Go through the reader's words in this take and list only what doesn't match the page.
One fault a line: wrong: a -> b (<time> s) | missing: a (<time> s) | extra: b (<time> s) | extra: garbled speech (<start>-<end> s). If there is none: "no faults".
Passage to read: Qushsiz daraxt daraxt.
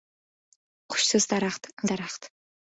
no faults